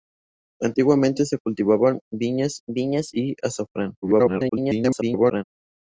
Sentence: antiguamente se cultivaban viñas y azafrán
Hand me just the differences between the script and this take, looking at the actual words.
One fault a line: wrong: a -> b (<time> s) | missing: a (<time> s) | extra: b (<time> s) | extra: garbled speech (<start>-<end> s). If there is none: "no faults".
extra: viñas (2.7 s)
extra: garbled speech (4.0-5.4 s)